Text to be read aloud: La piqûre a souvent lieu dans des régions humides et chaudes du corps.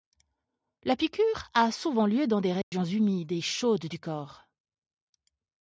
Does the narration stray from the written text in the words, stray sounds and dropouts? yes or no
yes